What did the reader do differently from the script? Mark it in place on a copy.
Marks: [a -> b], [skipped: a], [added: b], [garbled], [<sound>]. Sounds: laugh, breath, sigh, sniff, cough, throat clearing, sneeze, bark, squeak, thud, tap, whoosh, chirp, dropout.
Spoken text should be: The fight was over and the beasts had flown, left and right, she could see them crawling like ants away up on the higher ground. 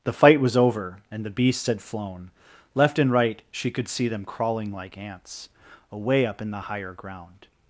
The fight was over and the beasts had flown, left and right, she could see them crawling like ants away up [on -> in] the higher ground.